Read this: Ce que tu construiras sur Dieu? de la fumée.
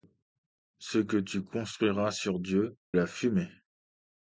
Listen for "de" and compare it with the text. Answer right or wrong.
wrong